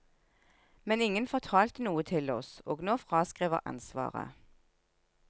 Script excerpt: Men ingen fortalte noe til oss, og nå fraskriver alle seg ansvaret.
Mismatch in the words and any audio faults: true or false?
true